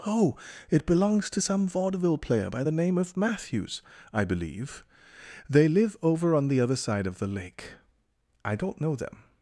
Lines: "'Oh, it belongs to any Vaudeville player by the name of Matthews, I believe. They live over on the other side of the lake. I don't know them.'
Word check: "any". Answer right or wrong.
wrong